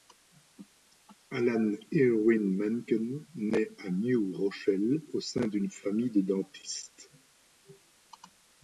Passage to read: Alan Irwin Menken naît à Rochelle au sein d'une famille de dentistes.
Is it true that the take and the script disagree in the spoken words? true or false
true